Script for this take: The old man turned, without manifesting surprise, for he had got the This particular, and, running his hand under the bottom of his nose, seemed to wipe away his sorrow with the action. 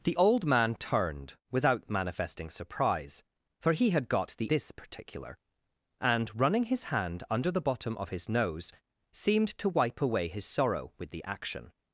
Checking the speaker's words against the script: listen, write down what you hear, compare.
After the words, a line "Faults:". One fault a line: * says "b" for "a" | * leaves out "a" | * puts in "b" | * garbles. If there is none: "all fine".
The old man turned, without manifesting surprise, for he had got the This particular, and, running his hand under the bottom of his nose, seemed to wipe away his sorrow with the action.
Faults:
all fine